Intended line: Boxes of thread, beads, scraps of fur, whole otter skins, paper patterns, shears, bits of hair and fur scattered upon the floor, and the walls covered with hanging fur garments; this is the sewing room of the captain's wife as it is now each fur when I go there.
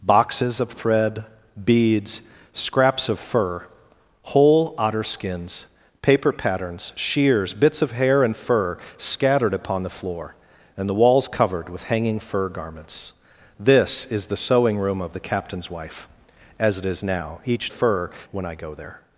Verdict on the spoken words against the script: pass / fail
pass